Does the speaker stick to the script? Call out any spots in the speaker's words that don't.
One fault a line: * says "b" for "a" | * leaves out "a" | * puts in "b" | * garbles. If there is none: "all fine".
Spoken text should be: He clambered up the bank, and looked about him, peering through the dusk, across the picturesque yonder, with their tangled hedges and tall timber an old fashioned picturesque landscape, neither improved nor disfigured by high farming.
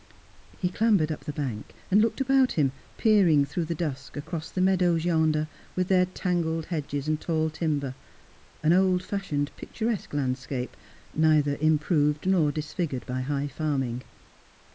* says "meadows" for "picturesque"